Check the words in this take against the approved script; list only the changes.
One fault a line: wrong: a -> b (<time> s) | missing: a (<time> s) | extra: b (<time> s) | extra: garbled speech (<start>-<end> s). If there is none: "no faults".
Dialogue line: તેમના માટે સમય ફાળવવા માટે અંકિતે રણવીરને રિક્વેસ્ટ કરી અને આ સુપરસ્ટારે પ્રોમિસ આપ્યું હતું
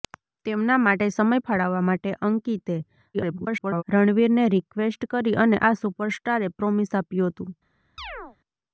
extra: garbled speech (3.1-3.8 s)